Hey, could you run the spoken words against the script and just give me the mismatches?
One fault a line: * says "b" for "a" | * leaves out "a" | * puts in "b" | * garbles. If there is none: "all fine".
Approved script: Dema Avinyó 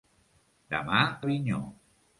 all fine